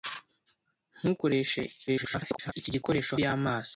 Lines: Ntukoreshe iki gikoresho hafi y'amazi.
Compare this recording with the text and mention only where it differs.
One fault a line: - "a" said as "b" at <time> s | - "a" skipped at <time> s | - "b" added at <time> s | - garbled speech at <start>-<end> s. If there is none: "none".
- garbled speech at 1.9-2.5 s
- "hafi" skipped at 3.1 s